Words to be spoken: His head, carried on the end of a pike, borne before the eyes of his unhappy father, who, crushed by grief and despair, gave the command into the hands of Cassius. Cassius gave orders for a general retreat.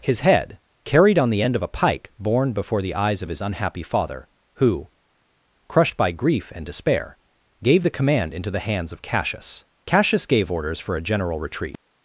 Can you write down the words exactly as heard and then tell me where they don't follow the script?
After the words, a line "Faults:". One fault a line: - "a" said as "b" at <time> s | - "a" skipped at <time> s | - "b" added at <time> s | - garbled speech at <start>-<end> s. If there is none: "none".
His head, carried on the end of a pike, borne before the eyes of his unhappy father, who, crushed by grief and despair, gave the command into the hands of Cassius. Cassius gave orders for a general retreat.
Faults:
none